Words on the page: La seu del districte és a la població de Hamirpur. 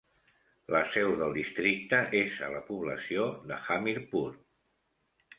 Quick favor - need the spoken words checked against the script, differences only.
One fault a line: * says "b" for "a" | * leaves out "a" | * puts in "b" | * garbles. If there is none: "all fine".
all fine